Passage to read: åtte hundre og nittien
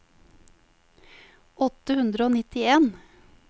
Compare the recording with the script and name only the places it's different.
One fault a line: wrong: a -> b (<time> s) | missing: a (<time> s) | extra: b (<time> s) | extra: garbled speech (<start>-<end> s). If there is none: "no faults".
no faults